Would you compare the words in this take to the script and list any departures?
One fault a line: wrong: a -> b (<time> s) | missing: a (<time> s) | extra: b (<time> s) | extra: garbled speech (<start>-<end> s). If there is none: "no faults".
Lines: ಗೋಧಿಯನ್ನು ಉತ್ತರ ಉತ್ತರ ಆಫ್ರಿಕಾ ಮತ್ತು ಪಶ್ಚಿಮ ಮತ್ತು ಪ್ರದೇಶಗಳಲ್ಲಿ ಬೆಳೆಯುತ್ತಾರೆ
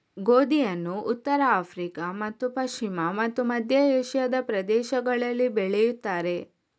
missing: ಉತ್ತರ (1.4 s)
extra: ಮಧ್ಯ ಏಷ್ಯಾದ (3.4 s)